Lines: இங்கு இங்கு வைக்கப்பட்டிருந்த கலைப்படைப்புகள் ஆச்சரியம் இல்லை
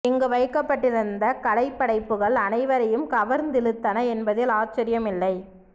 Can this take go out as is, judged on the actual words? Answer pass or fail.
fail